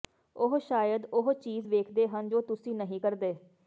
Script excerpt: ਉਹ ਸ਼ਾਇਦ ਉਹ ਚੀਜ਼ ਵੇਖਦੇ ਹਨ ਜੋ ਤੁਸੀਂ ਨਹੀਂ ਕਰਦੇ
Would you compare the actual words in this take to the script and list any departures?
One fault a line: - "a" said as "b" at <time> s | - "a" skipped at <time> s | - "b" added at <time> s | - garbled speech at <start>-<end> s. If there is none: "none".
none